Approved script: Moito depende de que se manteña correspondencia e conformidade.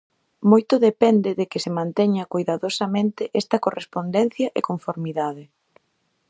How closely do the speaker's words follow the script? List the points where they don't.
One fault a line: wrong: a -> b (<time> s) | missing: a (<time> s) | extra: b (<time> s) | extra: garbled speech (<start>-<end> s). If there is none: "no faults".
extra: coidadosamente esta (2.3 s)